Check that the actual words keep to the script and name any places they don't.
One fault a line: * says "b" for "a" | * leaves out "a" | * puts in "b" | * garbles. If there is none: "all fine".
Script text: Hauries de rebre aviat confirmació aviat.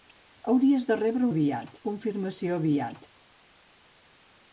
all fine